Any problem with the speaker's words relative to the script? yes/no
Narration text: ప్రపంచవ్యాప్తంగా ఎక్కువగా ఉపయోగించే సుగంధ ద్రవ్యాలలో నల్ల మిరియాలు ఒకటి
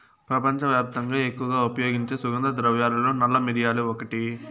no